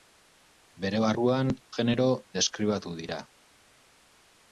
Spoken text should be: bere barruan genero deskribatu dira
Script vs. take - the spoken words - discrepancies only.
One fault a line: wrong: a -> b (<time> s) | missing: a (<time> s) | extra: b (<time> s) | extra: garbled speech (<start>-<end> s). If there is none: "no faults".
no faults